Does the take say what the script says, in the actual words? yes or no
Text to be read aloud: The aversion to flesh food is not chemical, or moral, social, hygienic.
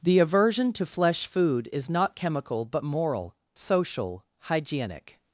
no